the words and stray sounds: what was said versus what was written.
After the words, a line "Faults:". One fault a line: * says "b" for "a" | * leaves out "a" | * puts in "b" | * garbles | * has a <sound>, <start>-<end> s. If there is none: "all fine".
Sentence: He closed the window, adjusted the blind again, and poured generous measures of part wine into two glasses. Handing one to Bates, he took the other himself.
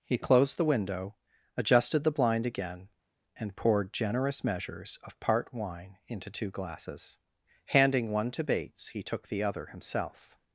He closed the window, adjusted the blind again, and poured generous measures of part wine into two glasses. Handing one to Bates, he took the other himself.
Faults:
all fine